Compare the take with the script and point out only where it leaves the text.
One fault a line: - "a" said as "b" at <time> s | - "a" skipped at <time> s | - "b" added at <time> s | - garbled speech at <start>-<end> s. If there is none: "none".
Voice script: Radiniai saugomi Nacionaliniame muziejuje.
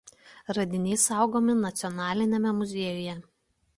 none